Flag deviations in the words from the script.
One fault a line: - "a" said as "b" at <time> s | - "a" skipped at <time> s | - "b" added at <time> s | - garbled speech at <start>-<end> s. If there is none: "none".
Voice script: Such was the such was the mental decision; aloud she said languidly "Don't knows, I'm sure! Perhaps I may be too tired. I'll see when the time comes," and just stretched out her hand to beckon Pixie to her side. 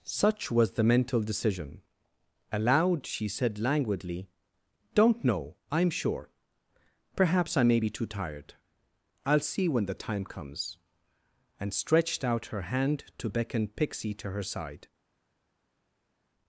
- "such was the" skipped at 0.8 s
- "knows" said as "know" at 5.2 s
- "just" skipped at 11.7 s